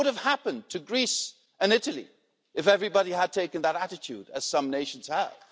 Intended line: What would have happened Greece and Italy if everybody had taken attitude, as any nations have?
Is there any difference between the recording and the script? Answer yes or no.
yes